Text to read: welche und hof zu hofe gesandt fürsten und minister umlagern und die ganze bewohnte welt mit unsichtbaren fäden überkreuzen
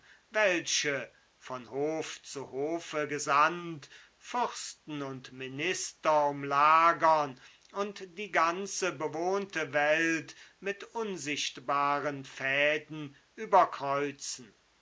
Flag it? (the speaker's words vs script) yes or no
yes